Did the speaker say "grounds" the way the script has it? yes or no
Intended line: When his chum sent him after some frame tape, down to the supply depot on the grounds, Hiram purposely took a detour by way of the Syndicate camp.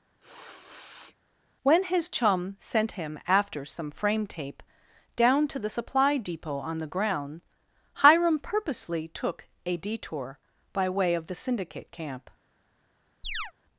no